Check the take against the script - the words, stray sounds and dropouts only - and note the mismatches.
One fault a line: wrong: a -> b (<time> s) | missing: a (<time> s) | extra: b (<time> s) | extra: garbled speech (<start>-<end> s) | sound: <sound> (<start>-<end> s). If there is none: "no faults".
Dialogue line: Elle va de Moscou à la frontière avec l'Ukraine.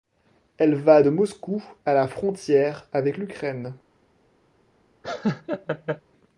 sound: laugh (5.0-6.0 s)